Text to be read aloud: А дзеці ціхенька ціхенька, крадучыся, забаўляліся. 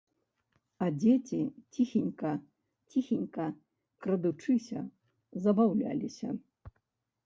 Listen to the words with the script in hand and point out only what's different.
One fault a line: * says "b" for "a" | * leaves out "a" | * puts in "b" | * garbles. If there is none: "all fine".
all fine